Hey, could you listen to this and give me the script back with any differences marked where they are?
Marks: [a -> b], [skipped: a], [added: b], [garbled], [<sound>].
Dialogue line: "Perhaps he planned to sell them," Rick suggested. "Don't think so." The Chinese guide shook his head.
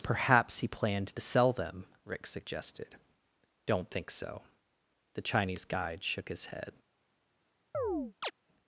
"Perhaps he planned to sell them," Rick suggested. "Don't think so." The Chinese guide shook his head. [chirp]